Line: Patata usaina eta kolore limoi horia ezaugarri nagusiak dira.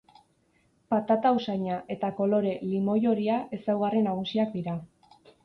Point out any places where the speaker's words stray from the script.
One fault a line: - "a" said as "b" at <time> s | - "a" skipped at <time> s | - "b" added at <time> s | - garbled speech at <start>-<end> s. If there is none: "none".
none